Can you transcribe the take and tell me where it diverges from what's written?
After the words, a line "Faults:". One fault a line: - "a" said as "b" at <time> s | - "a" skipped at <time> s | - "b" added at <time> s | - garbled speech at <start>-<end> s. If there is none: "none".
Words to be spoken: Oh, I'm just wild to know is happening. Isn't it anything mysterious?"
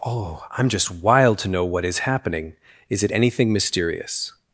Oh, I'm just wild to know what is happening. Is it anything mysterious?"
Faults:
- "what" added at 1.6 s
- "Isn't" said as "Is" at 2.9 s